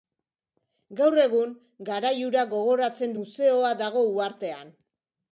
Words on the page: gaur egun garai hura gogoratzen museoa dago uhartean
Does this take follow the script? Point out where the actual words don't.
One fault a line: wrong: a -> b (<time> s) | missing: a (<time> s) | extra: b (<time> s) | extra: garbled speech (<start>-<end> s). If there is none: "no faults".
no faults